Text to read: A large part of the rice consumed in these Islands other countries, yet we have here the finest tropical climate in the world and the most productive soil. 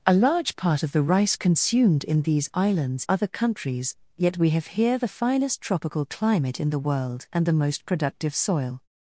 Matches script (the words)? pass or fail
pass